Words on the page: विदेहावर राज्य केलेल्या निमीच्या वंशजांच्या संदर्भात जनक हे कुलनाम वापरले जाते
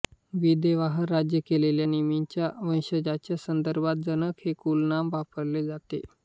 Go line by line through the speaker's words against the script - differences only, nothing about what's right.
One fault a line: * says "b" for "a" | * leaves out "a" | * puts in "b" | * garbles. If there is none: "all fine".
all fine